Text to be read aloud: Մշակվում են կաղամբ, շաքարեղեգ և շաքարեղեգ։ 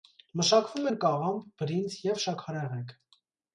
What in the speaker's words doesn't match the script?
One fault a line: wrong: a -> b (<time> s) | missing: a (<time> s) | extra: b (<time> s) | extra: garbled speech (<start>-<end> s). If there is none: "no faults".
wrong: շաքարեղեգ -> բրինձ (1.6 s)